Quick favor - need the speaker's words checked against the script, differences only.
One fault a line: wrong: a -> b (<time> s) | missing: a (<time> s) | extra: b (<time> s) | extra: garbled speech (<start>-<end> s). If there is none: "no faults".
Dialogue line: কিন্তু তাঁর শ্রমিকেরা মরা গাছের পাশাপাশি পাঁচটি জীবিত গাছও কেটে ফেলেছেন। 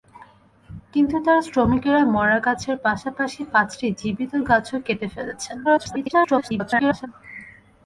extra: garbled speech (5.6-7.1 s)